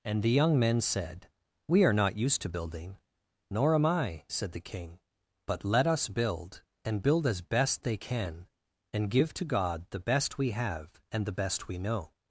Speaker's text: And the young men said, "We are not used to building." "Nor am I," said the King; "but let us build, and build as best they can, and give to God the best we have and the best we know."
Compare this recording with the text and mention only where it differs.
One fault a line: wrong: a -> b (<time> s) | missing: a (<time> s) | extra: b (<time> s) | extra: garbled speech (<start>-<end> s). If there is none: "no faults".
no faults